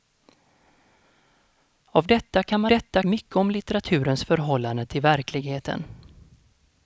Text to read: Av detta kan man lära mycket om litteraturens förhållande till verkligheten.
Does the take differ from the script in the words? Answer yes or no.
yes